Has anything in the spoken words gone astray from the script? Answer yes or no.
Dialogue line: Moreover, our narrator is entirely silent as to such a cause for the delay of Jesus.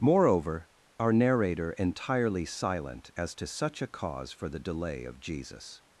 yes